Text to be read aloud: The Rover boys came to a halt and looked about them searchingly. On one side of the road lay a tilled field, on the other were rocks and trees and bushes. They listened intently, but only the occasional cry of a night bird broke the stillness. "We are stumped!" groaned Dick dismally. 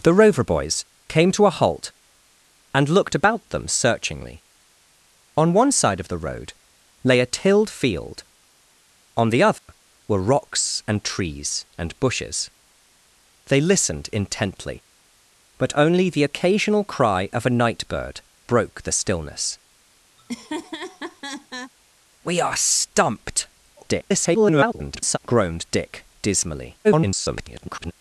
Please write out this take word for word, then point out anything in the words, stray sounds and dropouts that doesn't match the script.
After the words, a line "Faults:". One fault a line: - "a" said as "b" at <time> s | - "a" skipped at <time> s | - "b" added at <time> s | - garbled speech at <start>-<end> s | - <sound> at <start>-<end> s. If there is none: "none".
The Rover boys came to a halt and looked about them searchingly. On one side of the road lay a tilled field, on the other were rocks and trees and bushes. They listened intently, but only the occasional cry of a night bird broke the stillness. "We are stumped!" [garbled] groaned Dick dismally. [garbled]
Faults:
- dropout at 9.6-9.7 s
- laugh at 20.2-21.7 s
- garbled speech at 23.8-25.2 s
- garbled speech at 26.8-27.9 s